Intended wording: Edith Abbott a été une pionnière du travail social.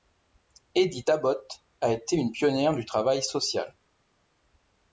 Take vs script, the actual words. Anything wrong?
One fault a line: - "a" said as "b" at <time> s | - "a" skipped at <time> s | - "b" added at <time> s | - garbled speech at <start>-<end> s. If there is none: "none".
none